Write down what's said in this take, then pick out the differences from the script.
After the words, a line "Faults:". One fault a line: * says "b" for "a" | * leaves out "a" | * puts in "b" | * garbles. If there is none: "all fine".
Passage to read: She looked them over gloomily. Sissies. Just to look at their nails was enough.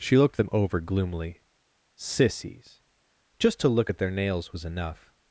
She looked them over gloomily. Sissies. Just to look at their nails was enough.
Faults:
all fine